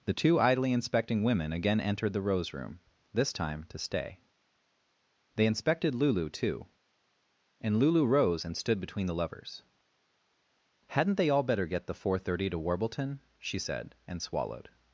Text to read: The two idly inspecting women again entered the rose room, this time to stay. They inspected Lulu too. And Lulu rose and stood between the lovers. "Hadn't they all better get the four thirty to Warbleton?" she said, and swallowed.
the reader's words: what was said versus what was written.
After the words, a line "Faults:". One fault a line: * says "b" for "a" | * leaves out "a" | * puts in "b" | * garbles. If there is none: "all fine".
The two idly inspecting women again entered the rose room, this time to stay. They inspected Lulu too. And Lulu rose and stood between the lovers. "Hadn't they all better get the four thirty to Warbleton?" she said, and swallowed.
Faults:
all fine